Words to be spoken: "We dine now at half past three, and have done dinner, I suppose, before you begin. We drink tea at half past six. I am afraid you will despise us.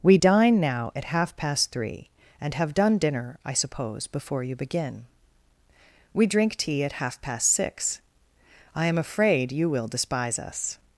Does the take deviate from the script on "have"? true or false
false